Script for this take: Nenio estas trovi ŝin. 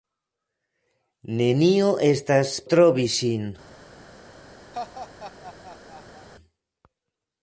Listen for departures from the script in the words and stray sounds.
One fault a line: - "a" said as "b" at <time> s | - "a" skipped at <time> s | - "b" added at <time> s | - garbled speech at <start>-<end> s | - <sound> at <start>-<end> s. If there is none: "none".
- laugh at 4.7-6.3 s